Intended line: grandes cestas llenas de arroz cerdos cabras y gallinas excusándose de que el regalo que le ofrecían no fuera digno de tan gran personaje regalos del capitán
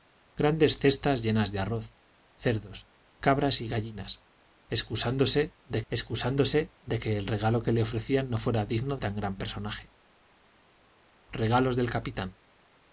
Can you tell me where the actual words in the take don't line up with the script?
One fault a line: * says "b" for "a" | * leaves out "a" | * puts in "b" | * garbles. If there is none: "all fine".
* puts in "excusándose de"
* leaves out "de"